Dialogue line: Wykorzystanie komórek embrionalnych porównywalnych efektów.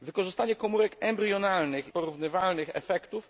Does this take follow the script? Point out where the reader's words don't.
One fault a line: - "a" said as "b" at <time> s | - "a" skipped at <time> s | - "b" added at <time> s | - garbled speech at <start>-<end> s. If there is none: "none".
none